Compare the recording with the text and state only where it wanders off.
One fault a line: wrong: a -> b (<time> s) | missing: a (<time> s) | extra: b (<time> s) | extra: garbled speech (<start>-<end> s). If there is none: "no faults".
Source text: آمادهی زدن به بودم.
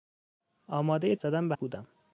no faults